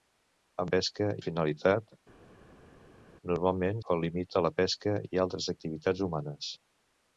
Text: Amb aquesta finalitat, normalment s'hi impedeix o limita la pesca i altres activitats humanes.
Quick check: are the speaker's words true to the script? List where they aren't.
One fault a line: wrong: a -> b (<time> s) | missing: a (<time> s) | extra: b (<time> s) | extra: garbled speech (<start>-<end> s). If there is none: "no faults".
wrong: aquesta -> pesca (0.8 s)
missing: s'hi impedeix (3.8 s)